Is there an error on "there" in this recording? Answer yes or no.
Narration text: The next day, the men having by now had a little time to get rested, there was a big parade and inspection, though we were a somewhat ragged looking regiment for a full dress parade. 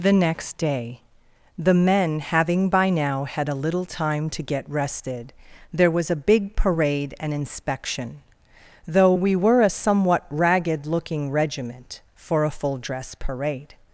no